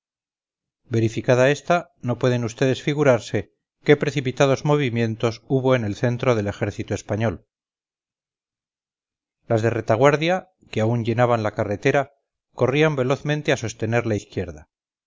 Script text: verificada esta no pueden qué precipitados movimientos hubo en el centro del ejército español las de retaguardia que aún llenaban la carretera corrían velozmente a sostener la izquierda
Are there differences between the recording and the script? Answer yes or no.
yes